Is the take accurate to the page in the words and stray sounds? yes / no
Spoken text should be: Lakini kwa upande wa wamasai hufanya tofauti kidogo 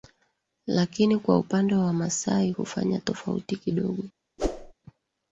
no